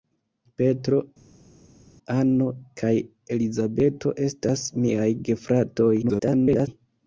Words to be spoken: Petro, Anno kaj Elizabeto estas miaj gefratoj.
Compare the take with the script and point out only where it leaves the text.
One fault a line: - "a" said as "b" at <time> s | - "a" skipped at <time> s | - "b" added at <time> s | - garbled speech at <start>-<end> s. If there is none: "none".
- garbled speech at 6.0-6.7 s